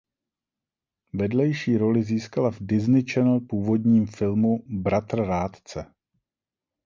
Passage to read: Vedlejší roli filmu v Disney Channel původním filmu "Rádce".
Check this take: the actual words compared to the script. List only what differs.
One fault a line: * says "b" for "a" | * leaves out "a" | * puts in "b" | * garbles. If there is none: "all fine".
* says "získala" for "filmu"
* puts in "Bratr"